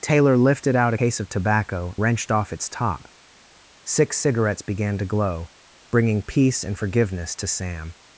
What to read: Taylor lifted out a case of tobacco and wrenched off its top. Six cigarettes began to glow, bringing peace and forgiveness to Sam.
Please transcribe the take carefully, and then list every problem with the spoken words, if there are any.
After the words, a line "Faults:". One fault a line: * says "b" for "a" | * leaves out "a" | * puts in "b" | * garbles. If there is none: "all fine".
Taylor lifted out case of tobacco wrenched off its top. Six cigarettes began to glow, bringing peace and forgiveness to Sam.
Faults:
* leaves out "a"
* leaves out "and"